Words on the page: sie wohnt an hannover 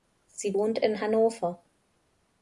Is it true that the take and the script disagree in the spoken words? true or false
true